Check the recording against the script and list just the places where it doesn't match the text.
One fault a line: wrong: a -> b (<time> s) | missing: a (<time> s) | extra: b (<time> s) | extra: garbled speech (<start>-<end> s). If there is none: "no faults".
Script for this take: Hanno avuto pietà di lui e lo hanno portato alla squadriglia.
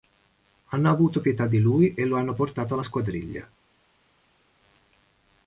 no faults